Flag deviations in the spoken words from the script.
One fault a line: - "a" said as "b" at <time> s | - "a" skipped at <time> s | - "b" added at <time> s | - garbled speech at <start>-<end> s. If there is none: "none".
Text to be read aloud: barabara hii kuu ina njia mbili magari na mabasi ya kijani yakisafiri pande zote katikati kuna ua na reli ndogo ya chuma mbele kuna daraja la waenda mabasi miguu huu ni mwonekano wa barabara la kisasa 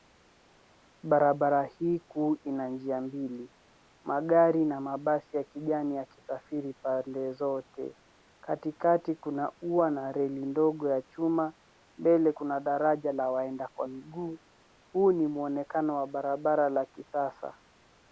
- "mabasi" said as "kwa" at 13.7 s